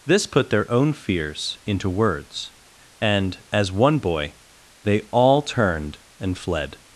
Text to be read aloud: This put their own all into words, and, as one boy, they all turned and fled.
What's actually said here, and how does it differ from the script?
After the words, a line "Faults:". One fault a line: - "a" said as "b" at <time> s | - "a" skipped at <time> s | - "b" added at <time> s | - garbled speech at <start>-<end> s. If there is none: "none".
This put their own fears into words, and, as one boy, they all turned and fled.
Faults:
- "all" said as "fears" at 0.9 s